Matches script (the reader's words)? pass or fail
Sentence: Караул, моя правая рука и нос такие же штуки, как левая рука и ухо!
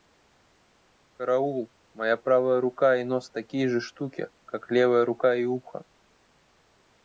pass